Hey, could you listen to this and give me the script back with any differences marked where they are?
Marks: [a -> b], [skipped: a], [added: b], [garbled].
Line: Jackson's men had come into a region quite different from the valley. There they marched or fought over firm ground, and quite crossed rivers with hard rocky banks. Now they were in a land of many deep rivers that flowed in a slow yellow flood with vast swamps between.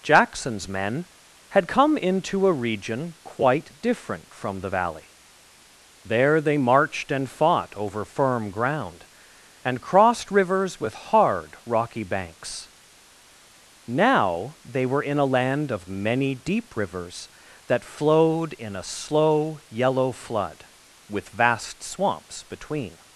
Jackson's men had come into a region quite different from the valley. There they marched [or -> and] fought over firm ground, and [skipped: quite] crossed rivers with hard rocky banks. Now they were in a land of many deep rivers that flowed in a slow yellow flood with vast swamps between.